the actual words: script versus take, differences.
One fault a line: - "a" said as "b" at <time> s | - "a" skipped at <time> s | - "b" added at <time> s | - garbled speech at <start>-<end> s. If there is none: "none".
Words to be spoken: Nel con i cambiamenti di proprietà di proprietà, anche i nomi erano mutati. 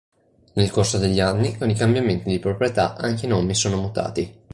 - "corso degli anni" added at 0.7 s
- "di proprietà" skipped at 3.0 s
- "erano" said as "sono" at 3.5 s